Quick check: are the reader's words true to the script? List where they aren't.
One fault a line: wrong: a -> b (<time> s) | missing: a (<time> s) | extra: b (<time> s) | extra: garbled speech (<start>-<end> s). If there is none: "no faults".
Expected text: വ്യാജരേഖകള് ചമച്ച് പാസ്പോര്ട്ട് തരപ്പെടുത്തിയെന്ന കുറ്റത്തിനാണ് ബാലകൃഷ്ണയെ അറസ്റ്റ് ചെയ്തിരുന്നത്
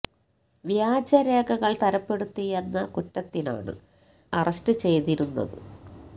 missing: ചമച്ച് പാസ്പോര്ട്ട് (1.8 s)
missing: ബാലകൃഷ്ണയെ (3.8 s)